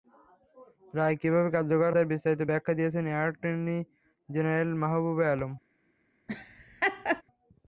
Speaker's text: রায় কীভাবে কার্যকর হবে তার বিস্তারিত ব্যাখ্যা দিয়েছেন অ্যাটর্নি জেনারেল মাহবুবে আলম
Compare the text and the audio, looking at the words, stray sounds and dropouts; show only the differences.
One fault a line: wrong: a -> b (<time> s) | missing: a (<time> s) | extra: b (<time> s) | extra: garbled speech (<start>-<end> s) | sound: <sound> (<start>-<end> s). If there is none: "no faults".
missing: হবে (1.9 s)
sound: laugh (6.3-7.2 s)